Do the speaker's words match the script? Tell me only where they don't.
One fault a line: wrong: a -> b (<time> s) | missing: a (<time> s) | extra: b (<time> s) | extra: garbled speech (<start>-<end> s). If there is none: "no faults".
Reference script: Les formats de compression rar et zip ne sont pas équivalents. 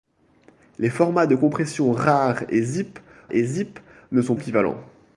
extra: et zip (3.3 s)
missing: pas (4.4 s)